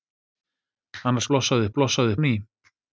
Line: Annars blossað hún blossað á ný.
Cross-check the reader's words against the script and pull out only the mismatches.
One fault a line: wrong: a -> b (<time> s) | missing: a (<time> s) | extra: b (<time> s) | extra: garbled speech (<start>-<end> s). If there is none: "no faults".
no faults